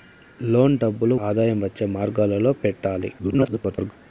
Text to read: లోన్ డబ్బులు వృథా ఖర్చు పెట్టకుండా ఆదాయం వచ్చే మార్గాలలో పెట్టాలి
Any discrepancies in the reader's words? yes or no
yes